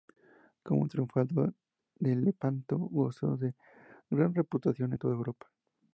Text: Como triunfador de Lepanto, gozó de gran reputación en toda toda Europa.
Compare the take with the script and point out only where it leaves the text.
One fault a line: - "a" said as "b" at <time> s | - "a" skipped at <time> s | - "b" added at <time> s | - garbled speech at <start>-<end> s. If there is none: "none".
- "toda" skipped at 5.1 s